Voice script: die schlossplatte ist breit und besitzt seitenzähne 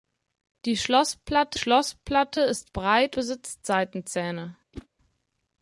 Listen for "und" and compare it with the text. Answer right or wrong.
wrong